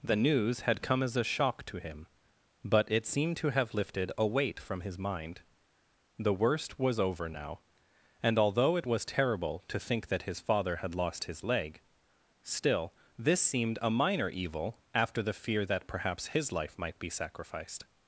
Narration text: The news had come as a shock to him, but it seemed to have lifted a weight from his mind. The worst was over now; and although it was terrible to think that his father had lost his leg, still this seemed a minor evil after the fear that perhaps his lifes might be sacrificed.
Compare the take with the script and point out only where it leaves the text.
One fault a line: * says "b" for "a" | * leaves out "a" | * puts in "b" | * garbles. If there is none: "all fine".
* says "life" for "lifes"